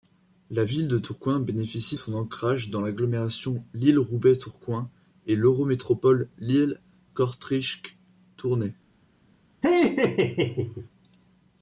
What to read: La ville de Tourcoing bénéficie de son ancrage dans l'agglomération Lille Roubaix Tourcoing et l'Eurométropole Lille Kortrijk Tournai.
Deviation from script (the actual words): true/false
true